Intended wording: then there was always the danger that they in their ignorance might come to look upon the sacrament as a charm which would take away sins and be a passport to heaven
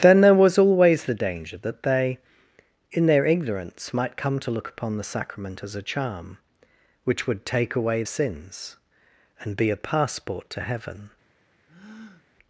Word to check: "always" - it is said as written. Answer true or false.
true